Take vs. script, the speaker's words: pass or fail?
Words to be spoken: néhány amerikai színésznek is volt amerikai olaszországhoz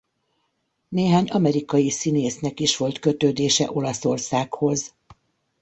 fail